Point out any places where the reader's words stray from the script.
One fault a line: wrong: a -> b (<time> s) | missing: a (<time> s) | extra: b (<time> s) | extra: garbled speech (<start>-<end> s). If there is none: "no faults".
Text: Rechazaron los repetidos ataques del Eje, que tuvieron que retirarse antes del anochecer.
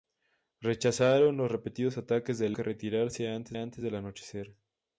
missing: Eje (2.6 s)
wrong: tuvieron que retirarse -> retirarse antes (2.6 s)